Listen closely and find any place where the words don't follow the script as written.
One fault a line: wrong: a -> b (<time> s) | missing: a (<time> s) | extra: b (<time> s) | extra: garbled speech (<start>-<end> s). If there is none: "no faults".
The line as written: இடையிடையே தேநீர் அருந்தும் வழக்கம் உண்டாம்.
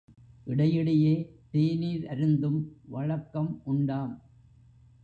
no faults